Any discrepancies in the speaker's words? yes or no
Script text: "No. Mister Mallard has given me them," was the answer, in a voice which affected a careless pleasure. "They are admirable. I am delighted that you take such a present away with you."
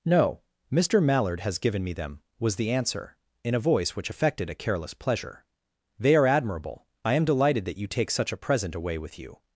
no